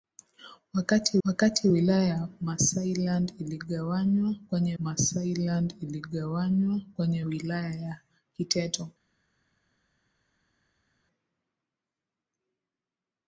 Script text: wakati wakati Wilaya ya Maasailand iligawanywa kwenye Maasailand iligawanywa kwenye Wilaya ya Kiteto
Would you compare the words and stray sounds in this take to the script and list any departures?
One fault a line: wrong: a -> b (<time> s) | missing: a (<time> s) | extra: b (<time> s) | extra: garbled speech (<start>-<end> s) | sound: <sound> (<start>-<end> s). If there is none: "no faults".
no faults